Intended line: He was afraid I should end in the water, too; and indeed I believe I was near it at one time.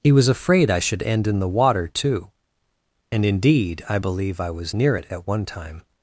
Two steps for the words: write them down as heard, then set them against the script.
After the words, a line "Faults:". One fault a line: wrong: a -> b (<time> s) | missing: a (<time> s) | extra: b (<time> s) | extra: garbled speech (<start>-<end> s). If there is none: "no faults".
He was afraid I should end in the water, too; and indeed I believe I was near it at one time.
Faults:
no faults